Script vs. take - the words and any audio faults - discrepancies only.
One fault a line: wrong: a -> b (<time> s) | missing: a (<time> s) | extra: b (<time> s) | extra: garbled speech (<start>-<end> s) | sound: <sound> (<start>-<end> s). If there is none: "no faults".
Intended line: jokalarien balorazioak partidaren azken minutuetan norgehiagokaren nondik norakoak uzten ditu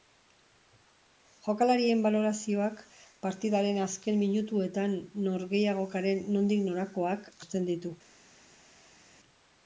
no faults